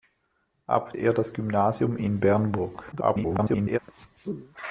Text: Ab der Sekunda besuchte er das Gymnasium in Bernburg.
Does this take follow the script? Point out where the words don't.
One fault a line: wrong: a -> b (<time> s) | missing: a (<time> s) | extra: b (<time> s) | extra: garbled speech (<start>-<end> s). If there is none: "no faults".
missing: der Sekunda besuchte (0.9 s)
extra: garbled speech (2.9-3.8 s)